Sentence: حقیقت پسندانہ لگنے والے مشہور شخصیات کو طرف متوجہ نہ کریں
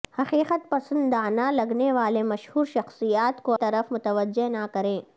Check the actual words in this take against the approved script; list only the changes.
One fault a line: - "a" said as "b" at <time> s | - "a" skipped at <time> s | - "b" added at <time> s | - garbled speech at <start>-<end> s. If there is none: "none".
none